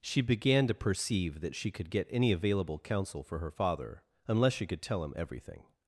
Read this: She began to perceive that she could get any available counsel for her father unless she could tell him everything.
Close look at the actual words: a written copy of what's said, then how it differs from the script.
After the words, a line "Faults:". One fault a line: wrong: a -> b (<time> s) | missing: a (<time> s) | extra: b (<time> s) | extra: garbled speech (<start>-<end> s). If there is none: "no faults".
She began to perceive that she could get any available counsel for her father unless she could tell him everything.
Faults:
no faults